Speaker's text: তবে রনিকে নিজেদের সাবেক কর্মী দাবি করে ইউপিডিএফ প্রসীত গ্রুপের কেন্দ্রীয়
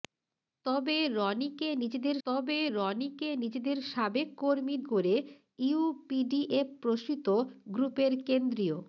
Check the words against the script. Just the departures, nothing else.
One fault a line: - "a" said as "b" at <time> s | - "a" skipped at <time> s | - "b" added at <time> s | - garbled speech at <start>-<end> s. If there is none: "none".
- "তবে রনিকে নিজেদের" added at 2.3 s
- "দাবি" skipped at 4.8 s